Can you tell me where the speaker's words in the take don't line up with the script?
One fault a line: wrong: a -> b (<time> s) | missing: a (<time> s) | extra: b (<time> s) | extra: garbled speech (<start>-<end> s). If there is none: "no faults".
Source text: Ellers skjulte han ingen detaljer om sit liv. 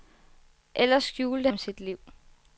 missing: han ingen detaljer (1.5 s)